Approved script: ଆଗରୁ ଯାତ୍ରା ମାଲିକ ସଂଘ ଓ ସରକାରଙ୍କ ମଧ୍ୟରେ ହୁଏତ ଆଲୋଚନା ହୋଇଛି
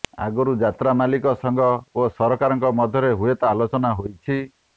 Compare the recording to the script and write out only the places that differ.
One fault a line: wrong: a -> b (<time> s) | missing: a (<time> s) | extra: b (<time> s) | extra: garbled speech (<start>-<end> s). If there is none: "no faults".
no faults